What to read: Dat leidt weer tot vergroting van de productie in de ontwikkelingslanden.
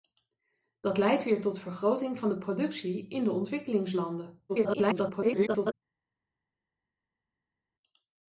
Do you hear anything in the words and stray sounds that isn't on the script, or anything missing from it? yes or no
yes